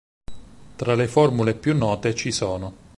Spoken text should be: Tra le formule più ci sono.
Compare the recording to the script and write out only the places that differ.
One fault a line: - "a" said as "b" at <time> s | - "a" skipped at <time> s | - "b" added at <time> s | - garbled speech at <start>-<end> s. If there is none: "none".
- "note" added at 1.8 s